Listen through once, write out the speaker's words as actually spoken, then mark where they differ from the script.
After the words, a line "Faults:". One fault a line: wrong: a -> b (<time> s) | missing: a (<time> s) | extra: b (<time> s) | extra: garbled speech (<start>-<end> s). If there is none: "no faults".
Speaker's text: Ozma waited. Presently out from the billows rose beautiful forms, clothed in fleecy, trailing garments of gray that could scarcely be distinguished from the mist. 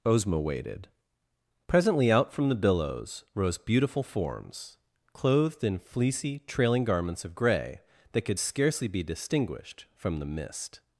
Ozma waited. Presently out from the billows rose beautiful forms, clothed in fleecy, trailing garments of gray that could scarcely be distinguished from the mist.
Faults:
no faults